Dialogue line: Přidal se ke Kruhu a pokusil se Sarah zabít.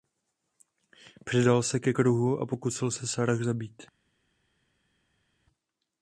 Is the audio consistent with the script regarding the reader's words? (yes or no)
yes